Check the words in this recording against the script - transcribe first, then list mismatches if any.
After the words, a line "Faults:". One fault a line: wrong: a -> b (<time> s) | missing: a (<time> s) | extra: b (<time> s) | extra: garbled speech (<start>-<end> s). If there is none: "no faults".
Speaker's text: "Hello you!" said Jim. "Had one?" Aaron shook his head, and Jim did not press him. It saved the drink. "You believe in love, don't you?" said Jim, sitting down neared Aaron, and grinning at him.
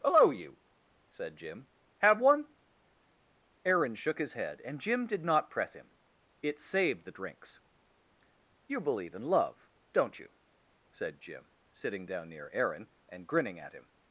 "Hello you!" said Jim. "Have one?" Aaron shook his head, and Jim did not press him. It saved the drinks. "You believe in love, don't you?" said Jim, sitting down near Aaron, and grinning at him.
Faults:
wrong: Had -> Have (2.0 s)
wrong: drink -> drinks (7.1 s)
wrong: neared -> near (12.3 s)